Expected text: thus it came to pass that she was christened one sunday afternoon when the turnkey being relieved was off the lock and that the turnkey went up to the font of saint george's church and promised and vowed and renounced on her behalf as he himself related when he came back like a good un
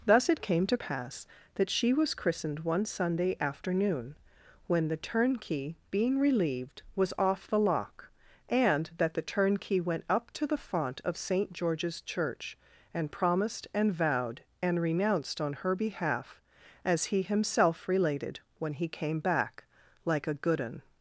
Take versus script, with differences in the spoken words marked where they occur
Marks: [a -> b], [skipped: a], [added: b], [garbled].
thus it came to pass that she was christened one sunday afternoon when the turnkey being relieved was off the lock and that the turnkey went up to the font of saint george's church and promised and vowed and renounced on her behalf as he himself related when he came back like a good un